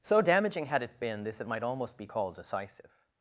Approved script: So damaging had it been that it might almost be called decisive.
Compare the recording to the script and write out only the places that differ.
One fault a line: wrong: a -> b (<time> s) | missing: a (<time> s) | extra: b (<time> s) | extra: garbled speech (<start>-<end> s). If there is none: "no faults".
wrong: that -> this (1.2 s)